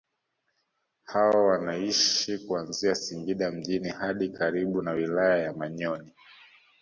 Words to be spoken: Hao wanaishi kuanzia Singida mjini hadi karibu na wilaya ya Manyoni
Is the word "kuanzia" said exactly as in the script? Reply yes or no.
yes